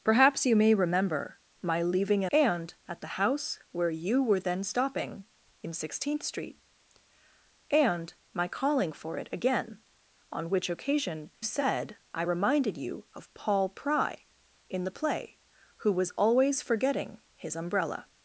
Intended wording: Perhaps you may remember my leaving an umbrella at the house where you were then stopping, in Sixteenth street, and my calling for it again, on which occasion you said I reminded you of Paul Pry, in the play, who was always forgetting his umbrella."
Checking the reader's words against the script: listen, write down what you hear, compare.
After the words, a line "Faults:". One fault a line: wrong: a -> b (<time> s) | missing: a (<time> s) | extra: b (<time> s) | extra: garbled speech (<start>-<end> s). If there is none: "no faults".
Perhaps you may remember my leaving an and at the house where you were then stopping, in Sixteenth street, and my calling for it again, on which occasion said I reminded you of Paul Pry, in the play, who was always forgetting his umbrella."
Faults:
wrong: umbrella -> and (2.3 s)
missing: you (11.3 s)